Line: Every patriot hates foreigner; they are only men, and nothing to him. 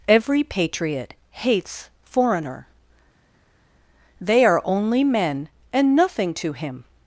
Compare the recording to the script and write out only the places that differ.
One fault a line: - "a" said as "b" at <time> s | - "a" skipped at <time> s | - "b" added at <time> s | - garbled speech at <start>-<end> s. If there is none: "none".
none